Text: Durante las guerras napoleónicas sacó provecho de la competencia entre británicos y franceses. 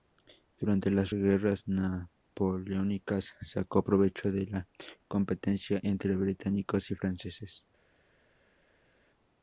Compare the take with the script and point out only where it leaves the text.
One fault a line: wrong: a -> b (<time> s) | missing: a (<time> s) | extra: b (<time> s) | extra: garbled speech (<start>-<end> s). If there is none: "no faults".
no faults